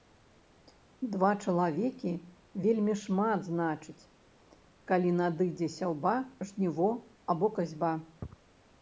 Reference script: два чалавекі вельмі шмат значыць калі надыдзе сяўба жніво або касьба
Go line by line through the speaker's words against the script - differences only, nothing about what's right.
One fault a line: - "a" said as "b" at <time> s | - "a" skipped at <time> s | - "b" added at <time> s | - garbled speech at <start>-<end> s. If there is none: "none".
none